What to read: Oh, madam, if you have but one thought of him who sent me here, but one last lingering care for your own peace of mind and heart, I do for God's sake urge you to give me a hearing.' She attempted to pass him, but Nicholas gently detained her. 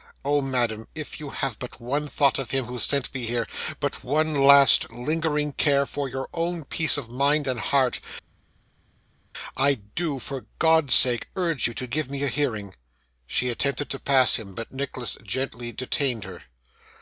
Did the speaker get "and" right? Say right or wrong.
right